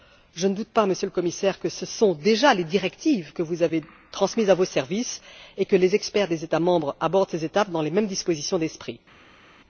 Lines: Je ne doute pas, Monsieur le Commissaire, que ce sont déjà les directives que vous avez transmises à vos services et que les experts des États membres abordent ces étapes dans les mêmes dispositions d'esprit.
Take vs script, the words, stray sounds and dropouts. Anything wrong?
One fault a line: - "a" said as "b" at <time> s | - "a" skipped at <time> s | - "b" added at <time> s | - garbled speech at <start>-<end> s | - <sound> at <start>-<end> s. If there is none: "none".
none